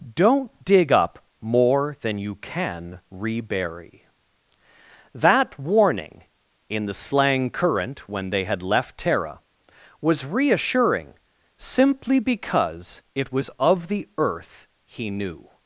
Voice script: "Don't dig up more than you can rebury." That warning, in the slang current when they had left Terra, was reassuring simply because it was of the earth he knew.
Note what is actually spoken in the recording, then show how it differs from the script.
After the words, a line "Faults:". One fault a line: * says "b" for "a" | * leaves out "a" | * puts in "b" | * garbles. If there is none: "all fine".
"Don't dig up more than you can rebury." That warning, in the slang current when they had left Terra, was reassuring simply because it was of the earth he knew.
Faults:
all fine